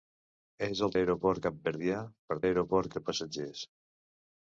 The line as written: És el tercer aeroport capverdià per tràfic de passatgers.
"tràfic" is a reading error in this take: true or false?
true